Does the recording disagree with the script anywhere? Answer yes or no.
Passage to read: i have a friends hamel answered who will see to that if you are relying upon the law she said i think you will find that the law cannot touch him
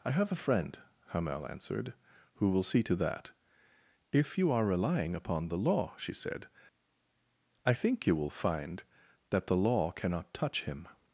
yes